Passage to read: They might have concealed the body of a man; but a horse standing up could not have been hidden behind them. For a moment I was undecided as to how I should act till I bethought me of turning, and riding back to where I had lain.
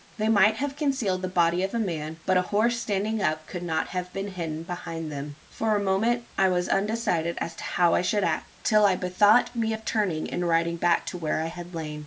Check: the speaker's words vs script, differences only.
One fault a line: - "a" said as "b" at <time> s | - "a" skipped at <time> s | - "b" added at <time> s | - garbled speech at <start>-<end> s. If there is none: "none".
none